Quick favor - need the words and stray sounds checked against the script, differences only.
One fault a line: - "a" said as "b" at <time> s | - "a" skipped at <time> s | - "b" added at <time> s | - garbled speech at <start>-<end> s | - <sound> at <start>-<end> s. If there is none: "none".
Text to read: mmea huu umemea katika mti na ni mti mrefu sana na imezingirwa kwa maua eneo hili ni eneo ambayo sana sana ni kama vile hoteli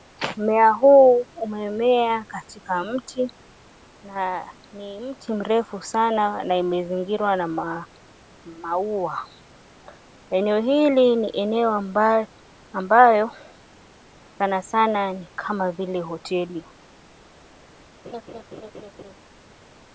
- "kwa" said as "na" at 7.4 s
- laugh at 18.0-19.1 s